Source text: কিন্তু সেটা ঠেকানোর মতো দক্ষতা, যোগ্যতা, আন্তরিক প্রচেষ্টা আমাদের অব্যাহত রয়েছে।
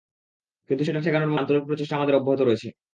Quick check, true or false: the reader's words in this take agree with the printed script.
false